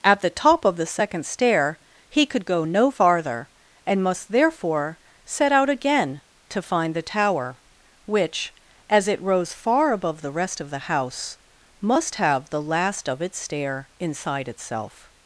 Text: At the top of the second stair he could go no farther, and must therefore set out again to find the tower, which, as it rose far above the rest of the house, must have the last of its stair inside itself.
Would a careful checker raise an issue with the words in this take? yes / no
no